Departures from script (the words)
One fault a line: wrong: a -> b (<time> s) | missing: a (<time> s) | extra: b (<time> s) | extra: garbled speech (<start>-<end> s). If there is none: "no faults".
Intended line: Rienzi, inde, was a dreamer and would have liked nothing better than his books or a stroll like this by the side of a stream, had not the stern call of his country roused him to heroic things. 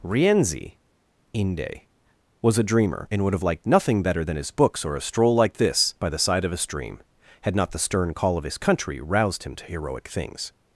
no faults